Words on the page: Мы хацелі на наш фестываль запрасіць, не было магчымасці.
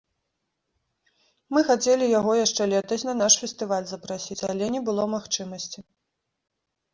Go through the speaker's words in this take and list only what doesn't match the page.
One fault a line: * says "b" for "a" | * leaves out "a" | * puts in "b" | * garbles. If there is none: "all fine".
* puts in "яго яшчэ летась"
* puts in "але"